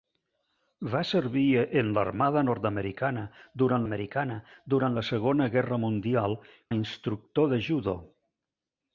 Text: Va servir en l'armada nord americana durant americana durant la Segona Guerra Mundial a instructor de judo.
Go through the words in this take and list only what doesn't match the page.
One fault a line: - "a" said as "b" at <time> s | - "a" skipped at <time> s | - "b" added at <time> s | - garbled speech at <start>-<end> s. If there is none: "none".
none